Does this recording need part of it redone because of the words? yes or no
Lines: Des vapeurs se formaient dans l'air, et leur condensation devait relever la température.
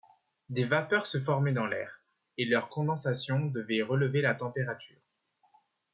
no